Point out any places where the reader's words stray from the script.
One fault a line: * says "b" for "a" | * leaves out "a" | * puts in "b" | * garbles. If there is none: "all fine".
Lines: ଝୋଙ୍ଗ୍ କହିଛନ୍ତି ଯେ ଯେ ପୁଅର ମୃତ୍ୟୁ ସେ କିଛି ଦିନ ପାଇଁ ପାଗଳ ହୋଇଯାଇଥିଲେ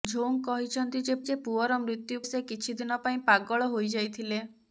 all fine